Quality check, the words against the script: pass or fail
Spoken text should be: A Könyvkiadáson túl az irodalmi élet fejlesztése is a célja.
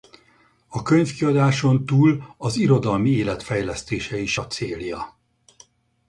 pass